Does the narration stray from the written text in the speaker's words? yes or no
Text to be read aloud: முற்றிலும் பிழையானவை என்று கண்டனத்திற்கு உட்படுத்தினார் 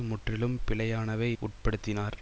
yes